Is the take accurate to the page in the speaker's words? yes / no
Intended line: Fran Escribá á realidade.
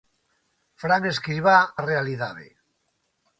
yes